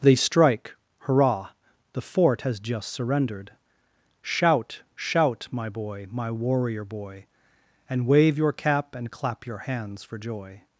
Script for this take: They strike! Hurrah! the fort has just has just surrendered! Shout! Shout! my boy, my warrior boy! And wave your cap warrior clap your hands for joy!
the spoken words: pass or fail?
fail